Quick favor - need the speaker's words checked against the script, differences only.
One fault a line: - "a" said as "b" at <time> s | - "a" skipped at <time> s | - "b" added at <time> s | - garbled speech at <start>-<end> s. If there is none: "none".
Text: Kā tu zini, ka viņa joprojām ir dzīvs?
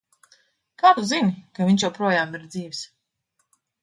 - "viņa" said as "viņš" at 1.7 s